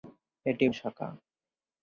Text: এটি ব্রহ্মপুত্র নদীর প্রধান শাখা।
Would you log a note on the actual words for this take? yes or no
yes